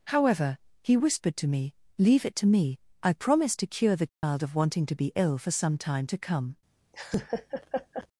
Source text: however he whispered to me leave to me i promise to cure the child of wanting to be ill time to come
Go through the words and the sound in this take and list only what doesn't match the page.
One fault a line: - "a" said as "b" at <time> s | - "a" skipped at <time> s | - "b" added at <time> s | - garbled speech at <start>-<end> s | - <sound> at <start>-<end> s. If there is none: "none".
- "it" added at 2.2 s
- dropout at 4.1-4.2 s
- "for some" added at 5.4 s
- laugh at 6.9-8.1 s